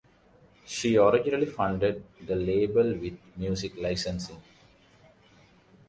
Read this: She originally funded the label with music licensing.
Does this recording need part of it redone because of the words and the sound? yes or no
no